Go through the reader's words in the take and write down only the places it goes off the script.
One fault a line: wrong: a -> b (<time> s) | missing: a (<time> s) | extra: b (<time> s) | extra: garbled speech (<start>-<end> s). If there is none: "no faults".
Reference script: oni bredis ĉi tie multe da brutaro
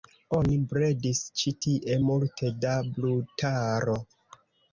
no faults